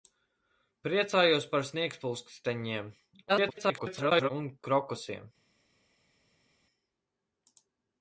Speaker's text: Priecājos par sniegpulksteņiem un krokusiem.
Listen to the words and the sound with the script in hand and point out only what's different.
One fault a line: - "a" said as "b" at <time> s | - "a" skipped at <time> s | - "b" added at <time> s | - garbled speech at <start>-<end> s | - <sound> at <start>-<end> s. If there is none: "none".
- garbled speech at 3.3-4.3 s